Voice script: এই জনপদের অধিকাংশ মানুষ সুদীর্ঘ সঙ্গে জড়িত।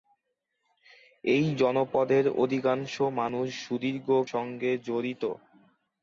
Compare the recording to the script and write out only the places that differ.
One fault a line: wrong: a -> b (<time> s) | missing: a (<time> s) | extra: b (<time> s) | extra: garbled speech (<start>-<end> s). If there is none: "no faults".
no faults